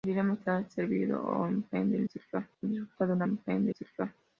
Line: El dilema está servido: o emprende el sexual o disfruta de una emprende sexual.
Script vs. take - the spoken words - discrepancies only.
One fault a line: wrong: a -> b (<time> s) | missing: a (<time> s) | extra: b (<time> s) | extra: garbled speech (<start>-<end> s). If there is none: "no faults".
no faults